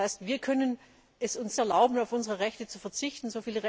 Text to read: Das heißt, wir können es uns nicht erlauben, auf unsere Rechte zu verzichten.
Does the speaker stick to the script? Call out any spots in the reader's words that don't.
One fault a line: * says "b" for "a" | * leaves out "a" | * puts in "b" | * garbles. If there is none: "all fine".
* leaves out "nicht"